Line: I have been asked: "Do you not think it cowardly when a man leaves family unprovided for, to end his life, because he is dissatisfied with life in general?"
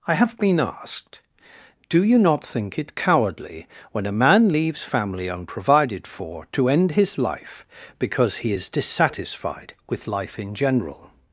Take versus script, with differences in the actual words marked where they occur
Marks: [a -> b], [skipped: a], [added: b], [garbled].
I have been asked: "Do you not think it cowardly when a man leaves family unprovided for, to end his life, because he is dissatisfied with life in general?"